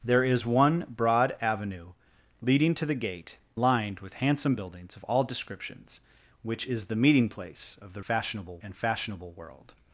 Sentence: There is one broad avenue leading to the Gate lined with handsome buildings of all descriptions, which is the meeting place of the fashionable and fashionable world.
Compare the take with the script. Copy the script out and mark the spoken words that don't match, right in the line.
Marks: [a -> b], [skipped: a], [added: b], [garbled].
There is one broad avenue leading to the Gate lined with handsome buildings of all descriptions, which is the meeting place of the fashionable and fashionable world.